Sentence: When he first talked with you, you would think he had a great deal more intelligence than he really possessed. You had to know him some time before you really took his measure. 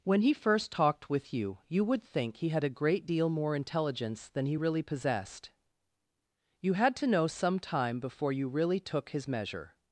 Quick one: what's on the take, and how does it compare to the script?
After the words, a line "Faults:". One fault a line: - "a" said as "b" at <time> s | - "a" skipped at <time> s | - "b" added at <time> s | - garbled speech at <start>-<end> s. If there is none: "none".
When he first talked with you, you would think he had a great deal more intelligence than he really possessed. You had to know some time before you really took his measure.
Faults:
- "him" skipped at 7.3 s